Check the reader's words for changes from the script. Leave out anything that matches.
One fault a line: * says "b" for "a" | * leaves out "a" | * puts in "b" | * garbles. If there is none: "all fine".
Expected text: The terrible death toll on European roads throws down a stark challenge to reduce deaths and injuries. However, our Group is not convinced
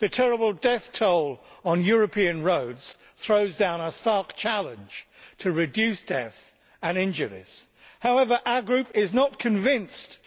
all fine